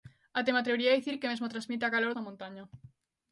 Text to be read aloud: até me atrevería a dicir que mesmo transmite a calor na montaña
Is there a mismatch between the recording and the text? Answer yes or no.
no